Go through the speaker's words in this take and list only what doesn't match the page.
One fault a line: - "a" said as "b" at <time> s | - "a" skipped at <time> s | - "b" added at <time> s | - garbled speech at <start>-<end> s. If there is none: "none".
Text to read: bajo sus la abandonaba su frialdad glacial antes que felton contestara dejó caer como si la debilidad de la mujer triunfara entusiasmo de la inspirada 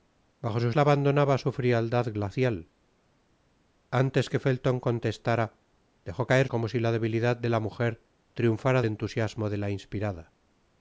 none